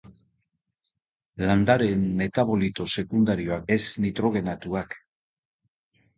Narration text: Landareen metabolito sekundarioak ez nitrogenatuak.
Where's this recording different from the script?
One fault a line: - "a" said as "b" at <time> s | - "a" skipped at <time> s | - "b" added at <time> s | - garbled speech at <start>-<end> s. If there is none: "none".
none